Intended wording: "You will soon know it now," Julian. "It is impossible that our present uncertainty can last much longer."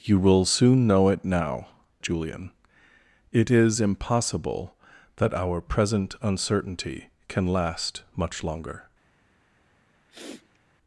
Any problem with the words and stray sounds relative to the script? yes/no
yes